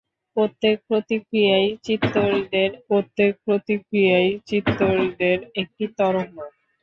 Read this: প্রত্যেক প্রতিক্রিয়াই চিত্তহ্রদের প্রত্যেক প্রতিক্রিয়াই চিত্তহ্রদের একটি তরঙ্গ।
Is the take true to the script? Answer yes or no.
yes